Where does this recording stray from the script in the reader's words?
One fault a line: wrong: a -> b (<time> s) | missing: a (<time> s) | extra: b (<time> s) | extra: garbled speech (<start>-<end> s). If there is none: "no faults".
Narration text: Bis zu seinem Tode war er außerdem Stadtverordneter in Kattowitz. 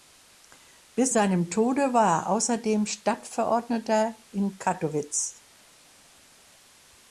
missing: zu (1.1 s)